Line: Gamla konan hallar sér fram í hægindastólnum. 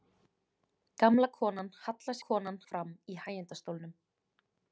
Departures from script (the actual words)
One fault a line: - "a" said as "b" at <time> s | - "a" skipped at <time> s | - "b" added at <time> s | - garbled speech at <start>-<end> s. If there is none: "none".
- "sér" said as "konan" at 2.2 s